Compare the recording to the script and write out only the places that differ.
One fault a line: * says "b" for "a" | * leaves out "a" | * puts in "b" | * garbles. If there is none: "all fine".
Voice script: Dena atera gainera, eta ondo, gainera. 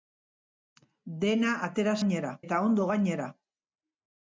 all fine